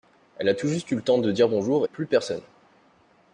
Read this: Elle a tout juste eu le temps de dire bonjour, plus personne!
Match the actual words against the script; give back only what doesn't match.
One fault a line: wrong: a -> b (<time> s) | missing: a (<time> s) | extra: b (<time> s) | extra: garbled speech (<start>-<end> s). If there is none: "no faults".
no faults